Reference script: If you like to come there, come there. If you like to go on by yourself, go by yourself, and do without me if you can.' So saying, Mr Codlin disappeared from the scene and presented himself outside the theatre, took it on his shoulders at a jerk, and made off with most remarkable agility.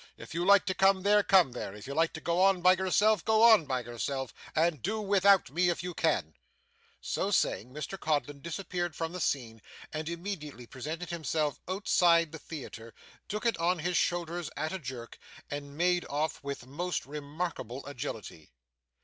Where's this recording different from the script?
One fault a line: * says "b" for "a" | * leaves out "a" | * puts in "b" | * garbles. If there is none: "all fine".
* puts in "on"
* puts in "immediately"